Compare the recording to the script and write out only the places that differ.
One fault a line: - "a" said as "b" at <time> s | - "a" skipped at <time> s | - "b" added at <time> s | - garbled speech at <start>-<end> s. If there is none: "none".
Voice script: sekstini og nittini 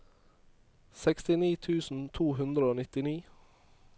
- "tusen to hundre" added at 1.7 s